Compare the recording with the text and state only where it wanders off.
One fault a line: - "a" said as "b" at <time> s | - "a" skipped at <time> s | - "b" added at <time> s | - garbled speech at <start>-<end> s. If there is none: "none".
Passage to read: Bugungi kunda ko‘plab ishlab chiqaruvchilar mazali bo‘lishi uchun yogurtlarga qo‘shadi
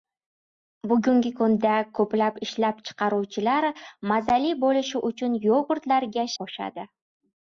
none